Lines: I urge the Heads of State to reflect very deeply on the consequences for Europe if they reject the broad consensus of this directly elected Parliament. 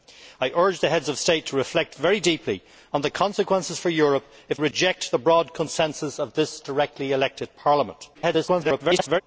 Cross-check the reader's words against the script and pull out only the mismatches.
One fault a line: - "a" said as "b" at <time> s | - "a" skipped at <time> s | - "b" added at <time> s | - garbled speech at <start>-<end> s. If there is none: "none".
- "they" skipped at 4.6 s
- garbled speech at 8.1-9.2 s